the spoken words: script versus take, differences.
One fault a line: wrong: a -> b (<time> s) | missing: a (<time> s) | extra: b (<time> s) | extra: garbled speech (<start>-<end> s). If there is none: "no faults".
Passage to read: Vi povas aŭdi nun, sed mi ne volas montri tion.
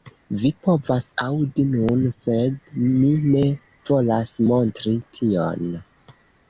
no faults